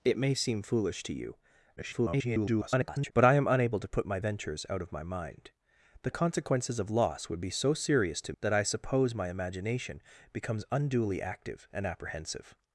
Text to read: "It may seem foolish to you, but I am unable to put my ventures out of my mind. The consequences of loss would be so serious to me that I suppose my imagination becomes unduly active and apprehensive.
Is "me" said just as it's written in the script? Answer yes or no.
no